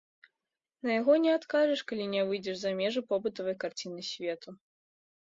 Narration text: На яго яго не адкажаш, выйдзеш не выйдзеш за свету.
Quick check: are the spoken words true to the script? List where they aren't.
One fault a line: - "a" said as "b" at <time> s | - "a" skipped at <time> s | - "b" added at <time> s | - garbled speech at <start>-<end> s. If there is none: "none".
- "яго" skipped at 1.1 s
- "выйдзеш" said as "калі" at 1.9 s
- "межы побытавай карціны" added at 2.8 s